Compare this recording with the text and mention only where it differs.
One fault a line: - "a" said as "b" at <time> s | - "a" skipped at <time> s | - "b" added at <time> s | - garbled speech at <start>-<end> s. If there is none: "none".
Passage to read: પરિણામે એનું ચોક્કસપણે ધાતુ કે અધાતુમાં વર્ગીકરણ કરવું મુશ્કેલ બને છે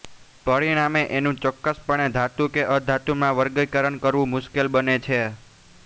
none